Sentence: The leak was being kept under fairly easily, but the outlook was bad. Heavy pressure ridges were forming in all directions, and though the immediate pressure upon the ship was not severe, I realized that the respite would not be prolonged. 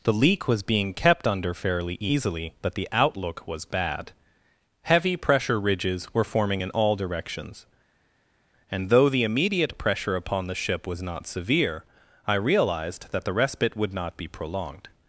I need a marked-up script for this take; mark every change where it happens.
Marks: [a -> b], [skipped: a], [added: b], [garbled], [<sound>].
The leak was being kept under fairly easily, but the outlook was bad. Heavy pressure ridges were forming in all directions, and though the immediate pressure upon the ship was not severe, I realized that the respite would not be prolonged.